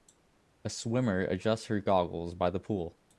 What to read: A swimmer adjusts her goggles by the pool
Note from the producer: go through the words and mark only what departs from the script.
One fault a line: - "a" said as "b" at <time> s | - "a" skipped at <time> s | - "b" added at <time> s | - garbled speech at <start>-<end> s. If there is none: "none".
none